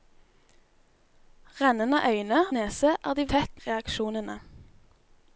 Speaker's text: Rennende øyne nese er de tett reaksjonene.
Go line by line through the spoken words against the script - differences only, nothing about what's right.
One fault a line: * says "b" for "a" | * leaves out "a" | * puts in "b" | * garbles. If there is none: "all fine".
all fine